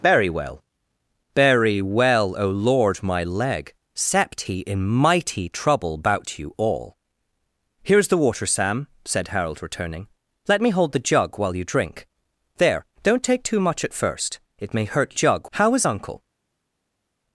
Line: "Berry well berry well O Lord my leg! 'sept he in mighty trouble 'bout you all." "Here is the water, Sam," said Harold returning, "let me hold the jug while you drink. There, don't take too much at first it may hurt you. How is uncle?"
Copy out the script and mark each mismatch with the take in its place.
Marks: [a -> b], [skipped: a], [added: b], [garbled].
"Berry well berry well O Lord my leg! 'sept he in mighty trouble 'bout you all." "Here is the water, Sam," said Harold returning, "let me hold the jug while you drink. There, don't take too much at first it may hurt [you. -> jug] How is uncle?"